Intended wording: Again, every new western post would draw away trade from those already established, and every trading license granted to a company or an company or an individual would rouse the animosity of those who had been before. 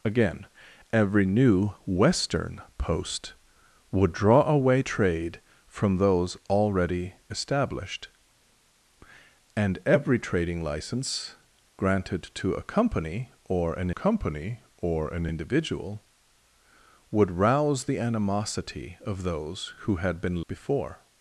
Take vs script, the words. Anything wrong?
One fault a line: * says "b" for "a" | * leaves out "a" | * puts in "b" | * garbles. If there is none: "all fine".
all fine